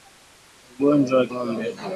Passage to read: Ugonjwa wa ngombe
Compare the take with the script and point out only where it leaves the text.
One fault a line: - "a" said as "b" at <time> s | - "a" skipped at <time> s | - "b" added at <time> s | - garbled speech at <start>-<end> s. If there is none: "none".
none